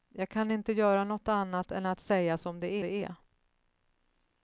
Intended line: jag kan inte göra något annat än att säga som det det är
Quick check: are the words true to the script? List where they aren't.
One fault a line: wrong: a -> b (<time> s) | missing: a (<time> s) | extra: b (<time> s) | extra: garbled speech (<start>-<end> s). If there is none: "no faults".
no faults